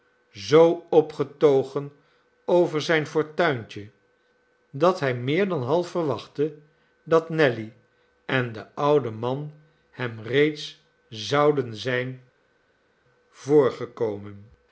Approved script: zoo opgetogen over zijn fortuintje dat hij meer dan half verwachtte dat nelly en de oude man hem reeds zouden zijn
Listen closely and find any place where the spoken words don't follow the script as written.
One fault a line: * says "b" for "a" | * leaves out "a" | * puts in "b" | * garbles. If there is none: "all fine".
all fine